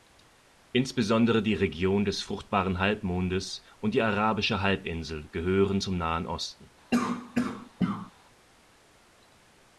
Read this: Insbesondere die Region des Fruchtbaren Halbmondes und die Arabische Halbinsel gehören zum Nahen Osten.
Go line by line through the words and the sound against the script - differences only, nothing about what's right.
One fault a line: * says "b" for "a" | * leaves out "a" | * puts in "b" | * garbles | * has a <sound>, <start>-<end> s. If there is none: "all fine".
* has a cough, 6.9-8.1 s